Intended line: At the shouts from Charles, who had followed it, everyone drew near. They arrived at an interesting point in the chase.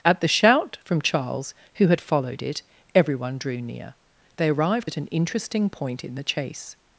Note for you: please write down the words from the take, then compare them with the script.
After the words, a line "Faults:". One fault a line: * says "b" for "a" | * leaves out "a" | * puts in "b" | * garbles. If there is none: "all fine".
At the shout from Charles, who had followed it, everyone drew near. They arrived at an interesting point in the chase.
Faults:
* says "shout" for "shouts"